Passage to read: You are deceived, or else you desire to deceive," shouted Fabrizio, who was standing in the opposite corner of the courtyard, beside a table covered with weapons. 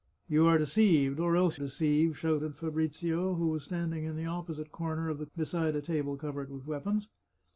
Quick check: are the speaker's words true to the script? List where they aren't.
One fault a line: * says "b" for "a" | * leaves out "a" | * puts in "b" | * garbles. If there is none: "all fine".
* leaves out "you desire to"
* leaves out "courtyard"